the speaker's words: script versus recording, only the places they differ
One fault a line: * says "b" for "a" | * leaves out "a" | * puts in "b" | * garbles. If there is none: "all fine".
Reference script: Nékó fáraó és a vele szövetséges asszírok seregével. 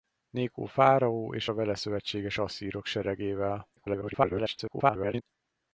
* garbles